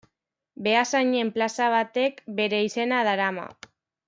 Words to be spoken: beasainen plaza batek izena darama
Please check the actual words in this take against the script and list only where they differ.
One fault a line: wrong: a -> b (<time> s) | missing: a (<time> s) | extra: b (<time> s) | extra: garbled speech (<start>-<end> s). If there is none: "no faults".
extra: bere (2.4 s)